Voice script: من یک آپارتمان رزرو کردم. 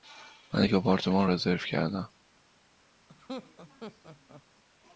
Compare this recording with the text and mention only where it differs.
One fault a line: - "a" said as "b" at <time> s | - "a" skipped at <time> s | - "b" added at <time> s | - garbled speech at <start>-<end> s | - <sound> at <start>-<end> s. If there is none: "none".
- laugh at 3.1-4.4 s